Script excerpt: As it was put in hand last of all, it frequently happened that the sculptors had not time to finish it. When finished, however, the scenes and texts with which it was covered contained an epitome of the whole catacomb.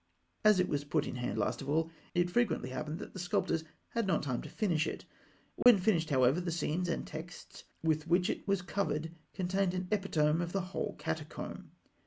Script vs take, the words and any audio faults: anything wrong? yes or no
yes